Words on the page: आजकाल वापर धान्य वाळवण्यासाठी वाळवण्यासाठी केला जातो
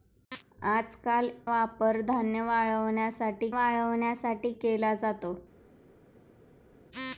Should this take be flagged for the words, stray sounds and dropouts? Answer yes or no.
no